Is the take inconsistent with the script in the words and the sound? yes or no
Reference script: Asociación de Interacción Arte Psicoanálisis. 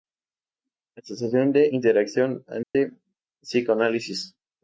yes